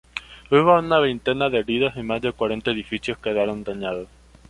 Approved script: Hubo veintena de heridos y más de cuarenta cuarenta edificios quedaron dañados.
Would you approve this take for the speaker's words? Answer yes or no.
no